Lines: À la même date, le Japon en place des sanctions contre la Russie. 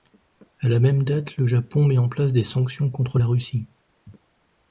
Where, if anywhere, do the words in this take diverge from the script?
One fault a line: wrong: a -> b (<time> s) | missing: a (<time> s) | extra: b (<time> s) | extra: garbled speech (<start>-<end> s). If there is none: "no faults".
extra: met (1.9 s)